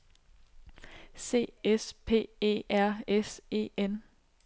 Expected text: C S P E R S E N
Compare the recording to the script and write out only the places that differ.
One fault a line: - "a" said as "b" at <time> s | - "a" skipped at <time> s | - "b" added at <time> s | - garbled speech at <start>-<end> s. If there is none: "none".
none